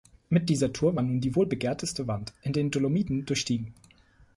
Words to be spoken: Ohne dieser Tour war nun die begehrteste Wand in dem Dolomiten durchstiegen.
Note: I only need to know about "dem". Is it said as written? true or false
false